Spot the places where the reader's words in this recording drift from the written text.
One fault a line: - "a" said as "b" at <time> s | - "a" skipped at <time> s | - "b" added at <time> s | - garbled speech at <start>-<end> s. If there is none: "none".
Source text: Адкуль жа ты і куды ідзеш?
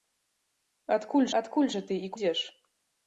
- "адкуль" added at 1.4 s
- "куды" skipped at 2.1 s